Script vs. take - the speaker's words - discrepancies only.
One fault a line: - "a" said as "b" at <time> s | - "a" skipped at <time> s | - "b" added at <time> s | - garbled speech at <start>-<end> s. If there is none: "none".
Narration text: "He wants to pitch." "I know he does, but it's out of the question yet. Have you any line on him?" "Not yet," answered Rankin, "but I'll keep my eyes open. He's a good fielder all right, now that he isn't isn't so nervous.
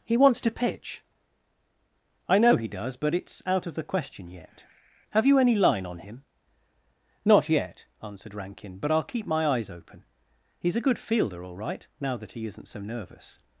- "isn't" skipped at 12.7 s